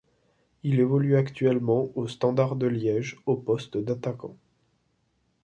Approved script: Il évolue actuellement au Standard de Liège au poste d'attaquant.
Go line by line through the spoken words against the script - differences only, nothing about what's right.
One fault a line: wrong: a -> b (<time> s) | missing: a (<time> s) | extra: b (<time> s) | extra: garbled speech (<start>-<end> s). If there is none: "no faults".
no faults